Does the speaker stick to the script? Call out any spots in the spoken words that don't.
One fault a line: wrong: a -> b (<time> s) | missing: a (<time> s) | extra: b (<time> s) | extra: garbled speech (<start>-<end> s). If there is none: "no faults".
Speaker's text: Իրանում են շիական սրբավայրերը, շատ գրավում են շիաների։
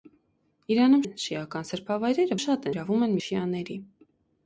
no faults